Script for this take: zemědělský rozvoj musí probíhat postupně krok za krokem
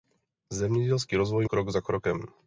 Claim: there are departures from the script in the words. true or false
true